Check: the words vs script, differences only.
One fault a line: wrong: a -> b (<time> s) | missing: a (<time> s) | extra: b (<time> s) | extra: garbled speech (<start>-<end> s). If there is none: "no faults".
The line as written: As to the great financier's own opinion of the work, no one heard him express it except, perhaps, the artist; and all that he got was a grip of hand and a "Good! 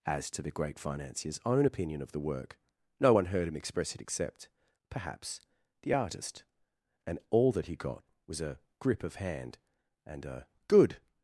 no faults